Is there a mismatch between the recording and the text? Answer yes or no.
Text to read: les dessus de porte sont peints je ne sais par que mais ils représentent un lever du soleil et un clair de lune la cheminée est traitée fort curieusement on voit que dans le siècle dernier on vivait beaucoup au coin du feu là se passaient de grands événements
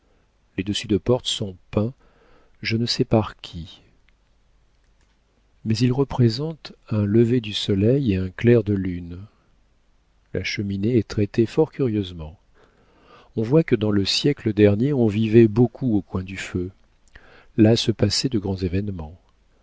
yes